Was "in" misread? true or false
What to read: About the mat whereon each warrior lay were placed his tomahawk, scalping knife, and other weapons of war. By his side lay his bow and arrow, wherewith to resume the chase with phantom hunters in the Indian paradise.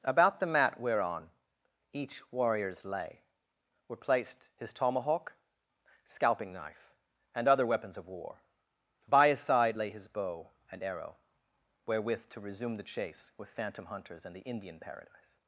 true